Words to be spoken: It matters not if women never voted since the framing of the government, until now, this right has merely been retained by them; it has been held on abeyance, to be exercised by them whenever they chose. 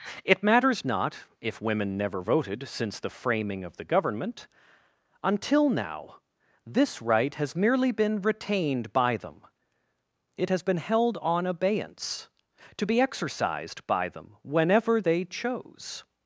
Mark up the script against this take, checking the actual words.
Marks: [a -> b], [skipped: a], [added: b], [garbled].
It matters not if women never voted since the framing of the government, until now, this right has merely been retained by them; it has been held on abeyance, to be exercised by them whenever they chose.